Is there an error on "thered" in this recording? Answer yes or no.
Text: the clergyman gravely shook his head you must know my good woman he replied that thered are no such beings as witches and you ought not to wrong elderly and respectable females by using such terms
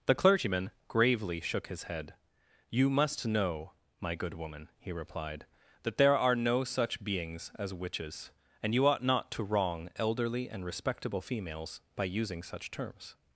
yes